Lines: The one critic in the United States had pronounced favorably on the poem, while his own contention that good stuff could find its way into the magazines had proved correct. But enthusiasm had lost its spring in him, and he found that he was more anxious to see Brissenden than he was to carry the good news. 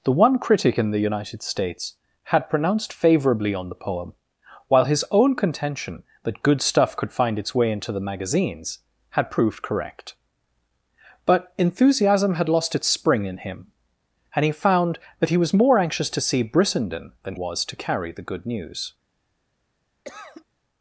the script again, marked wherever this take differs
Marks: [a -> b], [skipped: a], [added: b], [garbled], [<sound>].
The one critic in the United States had pronounced favorably on the poem, while his own contention that good stuff could find its way into the magazines had proved correct. But enthusiasm had lost its spring in him, and he found that he was more anxious to see Brissenden than [skipped: he] was to carry the good news. [cough]